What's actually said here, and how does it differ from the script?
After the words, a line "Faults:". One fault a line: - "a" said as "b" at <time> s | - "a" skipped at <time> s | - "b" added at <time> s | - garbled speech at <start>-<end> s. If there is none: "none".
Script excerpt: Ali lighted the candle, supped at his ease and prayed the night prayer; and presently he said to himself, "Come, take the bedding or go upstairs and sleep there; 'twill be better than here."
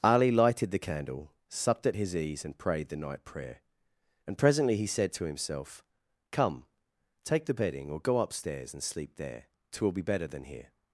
Ali lighted the candle, supped at his ease and prayed the night prayer; and presently he said to himself, "Come, take the bedding or go upstairs and sleep there; 'twill be better than here."
Faults:
none